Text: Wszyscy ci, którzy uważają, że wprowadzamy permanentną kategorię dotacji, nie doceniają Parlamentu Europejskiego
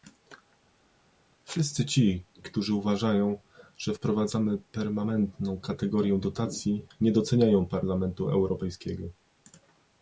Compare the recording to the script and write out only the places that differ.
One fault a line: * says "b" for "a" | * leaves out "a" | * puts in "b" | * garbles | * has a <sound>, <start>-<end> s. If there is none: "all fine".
all fine